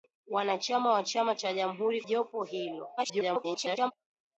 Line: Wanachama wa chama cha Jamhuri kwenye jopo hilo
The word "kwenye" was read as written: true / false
false